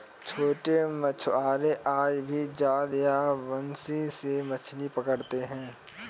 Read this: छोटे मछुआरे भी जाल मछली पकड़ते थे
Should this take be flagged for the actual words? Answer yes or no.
yes